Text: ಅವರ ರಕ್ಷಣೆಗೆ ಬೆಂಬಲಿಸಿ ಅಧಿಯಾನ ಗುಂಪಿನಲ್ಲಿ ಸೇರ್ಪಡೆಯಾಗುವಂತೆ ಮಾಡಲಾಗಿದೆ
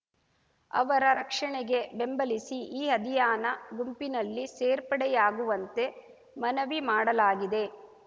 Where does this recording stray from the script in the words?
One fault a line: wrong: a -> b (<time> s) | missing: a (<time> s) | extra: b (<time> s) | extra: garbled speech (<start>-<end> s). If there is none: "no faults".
extra: ಈ (2.8 s)
extra: ಮನವಿ (6.4 s)